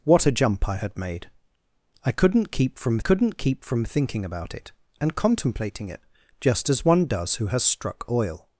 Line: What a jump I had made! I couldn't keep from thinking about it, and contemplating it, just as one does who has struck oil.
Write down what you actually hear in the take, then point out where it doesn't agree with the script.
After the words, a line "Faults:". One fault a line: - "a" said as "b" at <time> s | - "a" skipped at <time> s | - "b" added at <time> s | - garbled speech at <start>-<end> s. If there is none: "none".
What a jump I had made! I couldn't keep from couldn't keep from thinking about it, and contemplating it, just as one does who has struck oil.
Faults:
- "couldn't keep from" added at 3.0 s